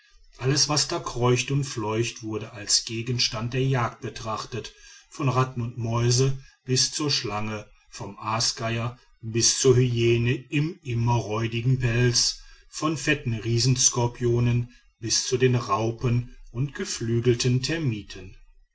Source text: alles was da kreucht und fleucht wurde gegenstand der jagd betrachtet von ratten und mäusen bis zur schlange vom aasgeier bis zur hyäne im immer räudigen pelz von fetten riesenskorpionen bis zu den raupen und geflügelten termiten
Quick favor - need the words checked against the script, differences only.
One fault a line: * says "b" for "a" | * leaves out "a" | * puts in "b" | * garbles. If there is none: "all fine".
* puts in "als"